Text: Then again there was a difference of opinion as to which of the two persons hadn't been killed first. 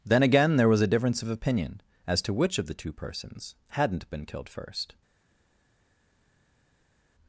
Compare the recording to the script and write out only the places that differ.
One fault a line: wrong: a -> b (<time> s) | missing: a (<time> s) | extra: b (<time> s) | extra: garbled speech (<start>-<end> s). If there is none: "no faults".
no faults